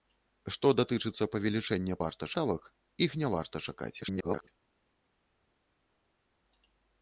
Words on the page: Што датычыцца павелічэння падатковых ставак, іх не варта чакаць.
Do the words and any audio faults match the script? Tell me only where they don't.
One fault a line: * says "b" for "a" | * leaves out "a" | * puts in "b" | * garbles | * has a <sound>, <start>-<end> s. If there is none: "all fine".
* says "варта" for "падатковых"
* garbles